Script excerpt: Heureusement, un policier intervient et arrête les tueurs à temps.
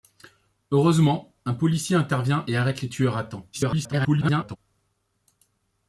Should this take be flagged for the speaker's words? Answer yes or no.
yes